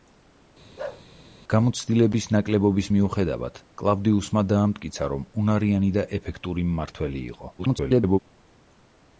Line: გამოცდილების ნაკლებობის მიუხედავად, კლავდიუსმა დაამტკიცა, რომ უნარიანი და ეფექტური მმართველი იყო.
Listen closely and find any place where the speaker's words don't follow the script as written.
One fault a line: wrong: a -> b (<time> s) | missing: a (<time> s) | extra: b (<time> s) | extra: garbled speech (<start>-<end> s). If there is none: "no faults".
extra: garbled speech (7.6-8.2 s)